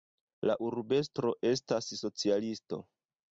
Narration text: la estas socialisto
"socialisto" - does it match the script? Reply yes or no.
yes